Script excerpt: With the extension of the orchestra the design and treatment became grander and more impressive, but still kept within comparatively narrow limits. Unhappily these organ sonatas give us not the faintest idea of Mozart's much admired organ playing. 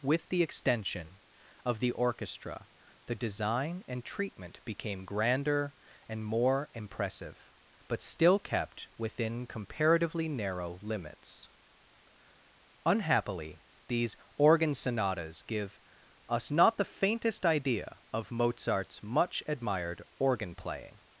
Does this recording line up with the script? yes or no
yes